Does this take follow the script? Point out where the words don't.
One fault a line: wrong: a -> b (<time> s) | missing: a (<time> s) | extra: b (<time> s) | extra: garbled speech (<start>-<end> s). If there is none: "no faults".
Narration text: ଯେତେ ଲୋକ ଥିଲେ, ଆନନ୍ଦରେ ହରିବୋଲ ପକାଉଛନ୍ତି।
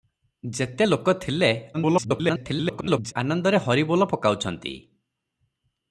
extra: garbled speech (1.7-3.1 s)